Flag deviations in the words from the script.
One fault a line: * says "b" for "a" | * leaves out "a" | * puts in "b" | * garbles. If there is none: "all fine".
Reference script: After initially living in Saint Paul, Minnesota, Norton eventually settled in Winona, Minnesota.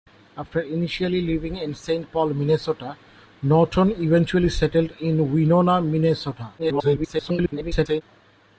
* garbles